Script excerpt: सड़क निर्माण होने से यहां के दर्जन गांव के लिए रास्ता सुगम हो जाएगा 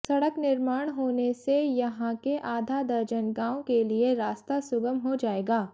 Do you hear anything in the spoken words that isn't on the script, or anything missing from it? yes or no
yes